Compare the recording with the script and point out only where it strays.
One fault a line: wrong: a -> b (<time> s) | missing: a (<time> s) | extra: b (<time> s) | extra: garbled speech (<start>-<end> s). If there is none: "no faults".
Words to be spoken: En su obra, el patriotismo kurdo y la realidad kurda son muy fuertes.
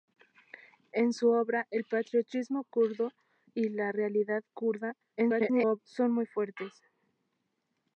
extra: garbled speech (5.2-5.8 s)